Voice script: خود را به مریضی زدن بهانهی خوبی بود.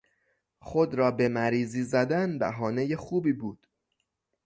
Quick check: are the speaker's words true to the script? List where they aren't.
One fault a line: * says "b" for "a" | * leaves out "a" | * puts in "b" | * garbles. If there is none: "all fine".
all fine